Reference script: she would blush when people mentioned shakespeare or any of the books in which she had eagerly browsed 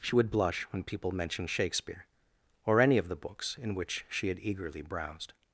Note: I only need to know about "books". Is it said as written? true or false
true